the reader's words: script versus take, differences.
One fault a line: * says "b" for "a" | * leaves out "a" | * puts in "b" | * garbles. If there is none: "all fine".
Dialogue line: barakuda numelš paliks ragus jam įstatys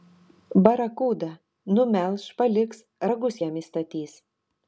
all fine